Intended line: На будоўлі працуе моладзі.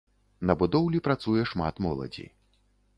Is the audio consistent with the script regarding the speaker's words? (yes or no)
no